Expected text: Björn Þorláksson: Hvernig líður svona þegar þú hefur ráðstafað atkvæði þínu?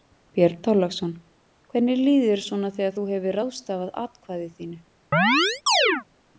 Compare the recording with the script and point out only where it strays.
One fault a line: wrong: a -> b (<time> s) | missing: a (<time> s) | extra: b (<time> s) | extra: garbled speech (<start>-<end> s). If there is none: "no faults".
extra: þér (2.3 s)